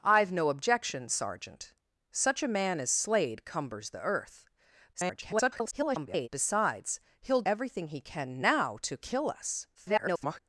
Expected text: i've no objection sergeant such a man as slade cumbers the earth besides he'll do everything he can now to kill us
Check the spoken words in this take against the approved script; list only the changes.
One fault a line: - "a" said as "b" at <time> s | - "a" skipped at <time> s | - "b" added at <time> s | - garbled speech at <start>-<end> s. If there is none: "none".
- garbled speech at 4.9-6.3 s
- "do" skipped at 7.4 s
- garbled speech at 9.7-10.4 s